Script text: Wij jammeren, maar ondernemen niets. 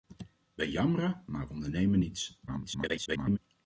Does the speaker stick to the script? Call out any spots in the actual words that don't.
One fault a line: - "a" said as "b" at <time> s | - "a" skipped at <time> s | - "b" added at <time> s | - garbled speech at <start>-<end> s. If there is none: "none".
- garbled speech at 2.5-3.4 s